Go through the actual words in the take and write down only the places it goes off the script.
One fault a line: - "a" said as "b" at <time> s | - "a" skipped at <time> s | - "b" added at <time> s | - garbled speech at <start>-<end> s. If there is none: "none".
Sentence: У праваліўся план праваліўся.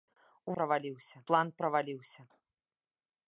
none